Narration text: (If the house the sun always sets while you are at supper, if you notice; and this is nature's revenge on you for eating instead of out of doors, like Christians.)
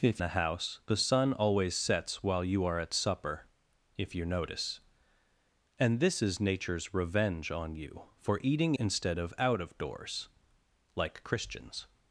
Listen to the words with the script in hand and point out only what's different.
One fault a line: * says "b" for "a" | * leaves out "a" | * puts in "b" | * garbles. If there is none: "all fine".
all fine